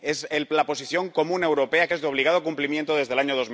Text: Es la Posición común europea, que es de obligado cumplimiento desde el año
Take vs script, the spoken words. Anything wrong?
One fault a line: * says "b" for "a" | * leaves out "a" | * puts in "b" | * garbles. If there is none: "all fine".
all fine